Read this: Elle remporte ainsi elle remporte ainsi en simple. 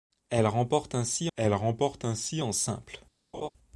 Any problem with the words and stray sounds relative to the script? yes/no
yes